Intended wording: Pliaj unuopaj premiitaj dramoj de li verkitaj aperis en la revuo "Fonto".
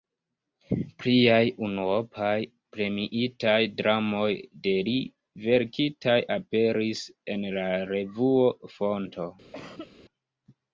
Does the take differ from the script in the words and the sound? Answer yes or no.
yes